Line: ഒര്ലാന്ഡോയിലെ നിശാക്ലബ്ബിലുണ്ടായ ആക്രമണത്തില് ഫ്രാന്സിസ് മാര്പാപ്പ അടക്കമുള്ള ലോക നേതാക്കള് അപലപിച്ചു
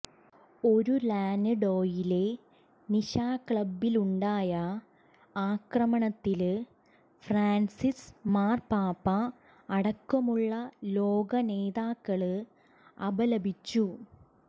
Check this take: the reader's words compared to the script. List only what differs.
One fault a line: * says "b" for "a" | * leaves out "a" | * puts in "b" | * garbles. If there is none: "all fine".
all fine